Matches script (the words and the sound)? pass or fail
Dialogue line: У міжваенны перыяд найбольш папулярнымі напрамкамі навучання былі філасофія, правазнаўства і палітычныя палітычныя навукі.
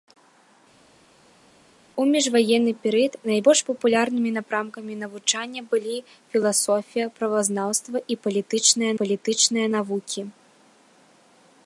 pass